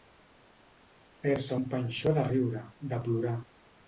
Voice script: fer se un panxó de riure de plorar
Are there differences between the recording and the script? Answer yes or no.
no